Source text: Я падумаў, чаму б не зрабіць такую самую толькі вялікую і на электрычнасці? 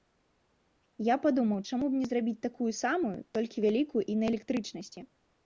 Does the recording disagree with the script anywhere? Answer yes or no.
no